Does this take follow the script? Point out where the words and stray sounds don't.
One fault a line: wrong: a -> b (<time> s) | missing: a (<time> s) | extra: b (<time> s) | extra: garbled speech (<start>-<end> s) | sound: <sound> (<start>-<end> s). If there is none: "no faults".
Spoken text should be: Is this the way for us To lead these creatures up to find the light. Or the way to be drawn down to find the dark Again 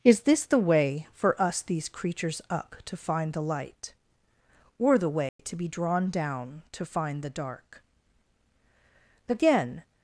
missing: To lead (1.6 s)
sound: dropout (5.3-5.4 s)